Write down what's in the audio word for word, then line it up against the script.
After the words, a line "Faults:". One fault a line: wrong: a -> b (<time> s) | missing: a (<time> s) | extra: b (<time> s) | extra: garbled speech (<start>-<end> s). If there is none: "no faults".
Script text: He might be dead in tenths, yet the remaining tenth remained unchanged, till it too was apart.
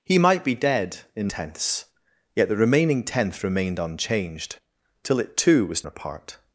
He might be dead in tenths, yet the remaining tenth remained unchanged, till it too was apart.
Faults:
no faults